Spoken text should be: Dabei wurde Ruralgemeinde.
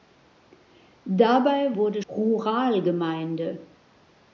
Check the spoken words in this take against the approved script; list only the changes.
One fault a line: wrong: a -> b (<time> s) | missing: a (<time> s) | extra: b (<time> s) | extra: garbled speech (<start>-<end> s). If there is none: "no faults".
no faults